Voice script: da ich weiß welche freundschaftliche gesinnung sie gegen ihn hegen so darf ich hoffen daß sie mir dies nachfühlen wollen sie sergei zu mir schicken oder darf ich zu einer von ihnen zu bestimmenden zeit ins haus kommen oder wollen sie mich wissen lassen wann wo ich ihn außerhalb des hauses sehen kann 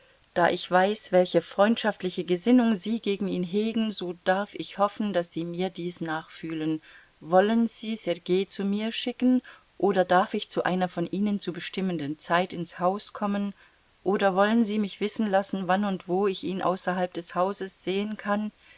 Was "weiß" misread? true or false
false